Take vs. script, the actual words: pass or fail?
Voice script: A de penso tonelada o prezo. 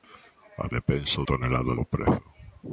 pass